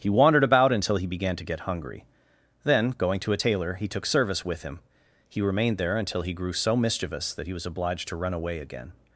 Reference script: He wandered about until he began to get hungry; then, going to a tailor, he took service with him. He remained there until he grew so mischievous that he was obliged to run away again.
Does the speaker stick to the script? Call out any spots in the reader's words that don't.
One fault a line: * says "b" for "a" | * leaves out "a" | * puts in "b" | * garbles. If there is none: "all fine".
all fine